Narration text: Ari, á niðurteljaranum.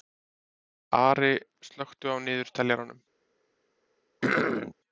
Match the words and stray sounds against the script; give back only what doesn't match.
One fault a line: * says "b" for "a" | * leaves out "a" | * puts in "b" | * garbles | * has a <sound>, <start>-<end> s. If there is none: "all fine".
* puts in "slökktu"
* has a throat clearing, 4.2-4.8 s